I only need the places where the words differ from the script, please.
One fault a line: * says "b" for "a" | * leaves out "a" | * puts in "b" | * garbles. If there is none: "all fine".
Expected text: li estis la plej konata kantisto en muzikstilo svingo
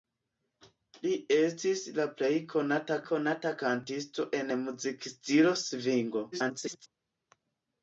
* puts in "konata"
* garbles